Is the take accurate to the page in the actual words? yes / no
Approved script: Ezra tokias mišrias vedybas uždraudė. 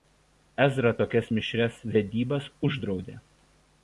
yes